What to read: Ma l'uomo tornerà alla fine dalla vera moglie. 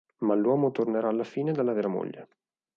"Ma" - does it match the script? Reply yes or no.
yes